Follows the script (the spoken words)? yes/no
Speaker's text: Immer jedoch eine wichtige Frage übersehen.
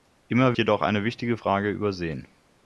yes